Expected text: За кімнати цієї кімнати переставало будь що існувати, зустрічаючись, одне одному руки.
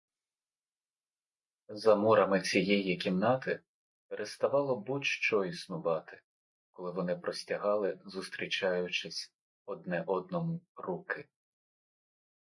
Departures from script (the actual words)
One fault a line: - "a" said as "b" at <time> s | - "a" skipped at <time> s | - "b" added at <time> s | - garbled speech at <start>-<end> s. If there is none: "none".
- "кімнати" said as "мурами" at 1.9 s
- "коли вони простягали" added at 6.7 s